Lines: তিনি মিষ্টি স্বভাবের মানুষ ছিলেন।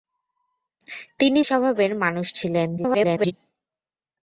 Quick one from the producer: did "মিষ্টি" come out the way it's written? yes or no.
no